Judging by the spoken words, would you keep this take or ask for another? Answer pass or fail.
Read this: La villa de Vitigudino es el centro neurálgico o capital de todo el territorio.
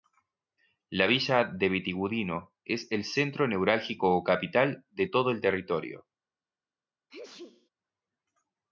pass